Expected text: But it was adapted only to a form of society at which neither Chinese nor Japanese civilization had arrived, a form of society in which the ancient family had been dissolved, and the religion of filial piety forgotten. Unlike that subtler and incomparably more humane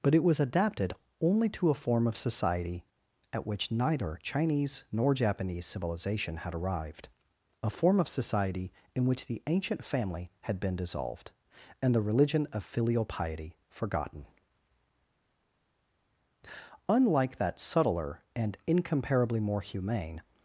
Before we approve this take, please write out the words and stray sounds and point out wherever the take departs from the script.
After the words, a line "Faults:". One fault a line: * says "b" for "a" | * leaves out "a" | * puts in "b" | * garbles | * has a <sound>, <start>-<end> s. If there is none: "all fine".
But it was adapted only to a form of society at which neither Chinese nor Japanese civilization had arrived, a form of society in which the ancient family had been dissolved, and the religion of filial piety forgotten. Unlike that subtler and incomparably more humane
Faults:
all fine